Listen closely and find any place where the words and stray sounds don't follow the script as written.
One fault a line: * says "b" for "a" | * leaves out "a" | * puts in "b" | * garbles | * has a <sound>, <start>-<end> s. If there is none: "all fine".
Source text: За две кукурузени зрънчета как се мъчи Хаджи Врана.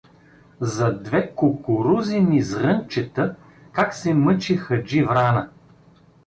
all fine